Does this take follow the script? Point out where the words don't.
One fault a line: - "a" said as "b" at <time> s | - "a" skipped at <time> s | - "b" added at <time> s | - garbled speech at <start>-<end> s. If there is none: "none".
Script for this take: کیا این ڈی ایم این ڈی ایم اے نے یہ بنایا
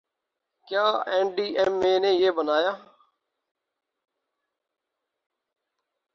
- "این ڈی ایم" skipped at 1.7 s